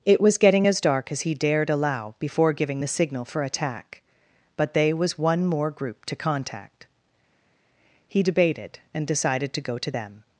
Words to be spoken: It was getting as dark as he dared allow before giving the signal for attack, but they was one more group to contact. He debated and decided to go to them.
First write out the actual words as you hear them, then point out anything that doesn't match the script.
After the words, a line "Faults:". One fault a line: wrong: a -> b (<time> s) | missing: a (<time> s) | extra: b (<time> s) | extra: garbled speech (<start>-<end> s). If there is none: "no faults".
It was getting as dark as he dared allow before giving the signal for attack, but they was one more group to contact. He debated and decided to go to them.
Faults:
no faults